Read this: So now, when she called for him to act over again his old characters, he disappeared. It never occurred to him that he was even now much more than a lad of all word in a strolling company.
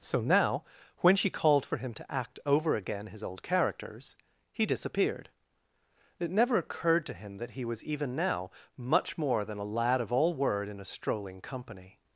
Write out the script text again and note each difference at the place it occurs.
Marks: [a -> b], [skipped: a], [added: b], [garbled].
So now, when she called for him to act over again his old characters, he disappeared. It never occurred to him that he was even now much more than a lad of all word in a strolling company.